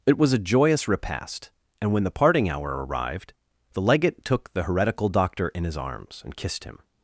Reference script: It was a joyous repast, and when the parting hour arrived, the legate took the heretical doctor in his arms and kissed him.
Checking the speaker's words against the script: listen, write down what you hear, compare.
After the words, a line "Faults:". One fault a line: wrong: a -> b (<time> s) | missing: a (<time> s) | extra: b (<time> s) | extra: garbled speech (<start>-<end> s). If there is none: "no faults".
It was a joyous repast, and when the parting hour arrived, the legate took the heretical doctor in his arms and kissed him.
Faults:
no faults